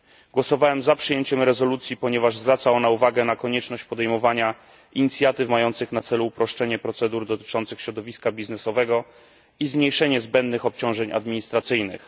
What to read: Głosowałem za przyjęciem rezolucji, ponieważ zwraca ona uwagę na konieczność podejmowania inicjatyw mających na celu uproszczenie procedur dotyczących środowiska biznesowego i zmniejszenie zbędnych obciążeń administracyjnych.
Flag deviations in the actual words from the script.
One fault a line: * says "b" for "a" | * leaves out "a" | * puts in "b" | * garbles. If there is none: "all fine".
all fine